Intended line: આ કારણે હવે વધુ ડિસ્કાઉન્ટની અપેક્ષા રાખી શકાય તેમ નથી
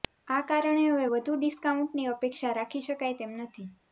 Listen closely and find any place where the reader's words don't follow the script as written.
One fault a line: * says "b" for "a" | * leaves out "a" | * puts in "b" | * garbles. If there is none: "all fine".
all fine